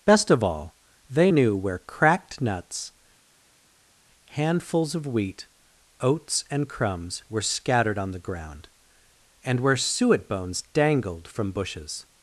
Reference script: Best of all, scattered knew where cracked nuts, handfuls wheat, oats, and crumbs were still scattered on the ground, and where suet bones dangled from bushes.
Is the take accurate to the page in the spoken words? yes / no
no